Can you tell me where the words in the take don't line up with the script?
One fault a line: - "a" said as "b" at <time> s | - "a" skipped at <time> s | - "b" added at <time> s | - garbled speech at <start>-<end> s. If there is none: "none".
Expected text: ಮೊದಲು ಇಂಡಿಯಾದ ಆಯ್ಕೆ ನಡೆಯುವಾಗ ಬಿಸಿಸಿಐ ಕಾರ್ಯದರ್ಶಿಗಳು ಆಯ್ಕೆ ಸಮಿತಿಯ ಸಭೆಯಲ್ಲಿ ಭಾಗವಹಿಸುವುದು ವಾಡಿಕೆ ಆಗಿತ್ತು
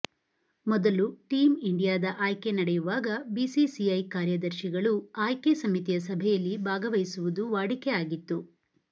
- "ಟೀಮ್" added at 1.3 s